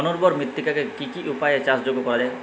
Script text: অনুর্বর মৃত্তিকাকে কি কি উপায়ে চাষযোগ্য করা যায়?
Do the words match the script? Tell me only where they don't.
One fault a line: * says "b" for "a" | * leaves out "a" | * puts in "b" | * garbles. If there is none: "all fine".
all fine